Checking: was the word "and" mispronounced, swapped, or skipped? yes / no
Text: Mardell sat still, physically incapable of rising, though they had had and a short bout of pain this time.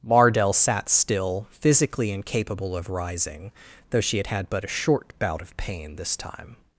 yes